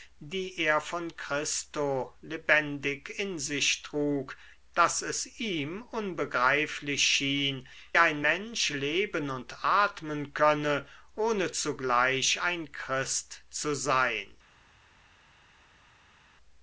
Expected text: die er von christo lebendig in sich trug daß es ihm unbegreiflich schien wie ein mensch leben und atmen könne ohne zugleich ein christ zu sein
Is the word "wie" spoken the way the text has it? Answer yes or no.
no